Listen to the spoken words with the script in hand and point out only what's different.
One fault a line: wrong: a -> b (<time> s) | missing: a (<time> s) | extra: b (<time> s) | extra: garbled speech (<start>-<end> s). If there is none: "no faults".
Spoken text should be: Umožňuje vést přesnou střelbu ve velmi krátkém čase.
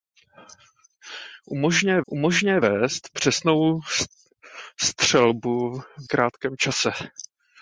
extra: umožňuje (2.1 s)
missing: ve velmi (5.8 s)